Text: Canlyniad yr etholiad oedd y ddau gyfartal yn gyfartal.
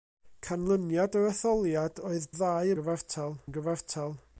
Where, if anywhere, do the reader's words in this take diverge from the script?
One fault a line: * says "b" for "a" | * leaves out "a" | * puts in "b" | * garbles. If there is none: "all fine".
all fine